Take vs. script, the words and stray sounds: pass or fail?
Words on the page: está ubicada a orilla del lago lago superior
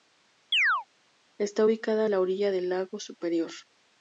fail